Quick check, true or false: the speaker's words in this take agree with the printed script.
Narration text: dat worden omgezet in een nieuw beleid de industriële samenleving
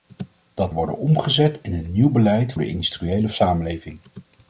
true